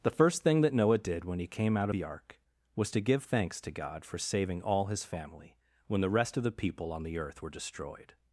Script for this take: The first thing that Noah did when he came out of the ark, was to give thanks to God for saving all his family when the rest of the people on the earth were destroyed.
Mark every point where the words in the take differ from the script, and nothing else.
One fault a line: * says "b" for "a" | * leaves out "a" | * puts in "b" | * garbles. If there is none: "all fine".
* leaves out "of"